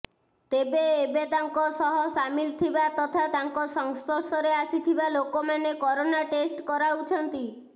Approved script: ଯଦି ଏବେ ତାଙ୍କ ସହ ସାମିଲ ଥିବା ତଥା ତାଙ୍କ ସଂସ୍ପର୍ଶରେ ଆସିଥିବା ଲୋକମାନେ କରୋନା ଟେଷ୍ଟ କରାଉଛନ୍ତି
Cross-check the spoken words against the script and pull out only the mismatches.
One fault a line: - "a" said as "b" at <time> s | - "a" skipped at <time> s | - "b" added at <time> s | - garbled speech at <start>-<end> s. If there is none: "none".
- "ଯଦି" said as "ତେବେ" at 0.5 s